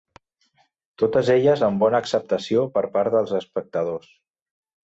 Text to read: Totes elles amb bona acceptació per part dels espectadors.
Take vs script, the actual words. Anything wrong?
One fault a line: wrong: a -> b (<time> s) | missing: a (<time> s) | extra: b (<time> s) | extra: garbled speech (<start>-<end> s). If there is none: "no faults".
no faults